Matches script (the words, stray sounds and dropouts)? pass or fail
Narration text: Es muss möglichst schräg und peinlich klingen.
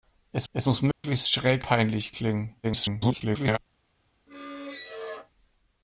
fail